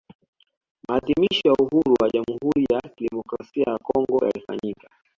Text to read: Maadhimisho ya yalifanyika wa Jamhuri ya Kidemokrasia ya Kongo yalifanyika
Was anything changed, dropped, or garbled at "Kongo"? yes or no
no